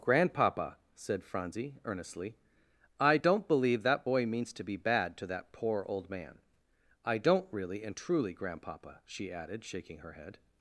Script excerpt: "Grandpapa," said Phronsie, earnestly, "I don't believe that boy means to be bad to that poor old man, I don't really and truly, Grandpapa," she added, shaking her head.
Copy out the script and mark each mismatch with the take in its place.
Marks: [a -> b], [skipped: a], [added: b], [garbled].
"Grandpapa," said Phronsie, earnestly, "I don't believe that boy means to be bad to that poor old man, I don't really and truly, Grandpapa," she added, shaking her head.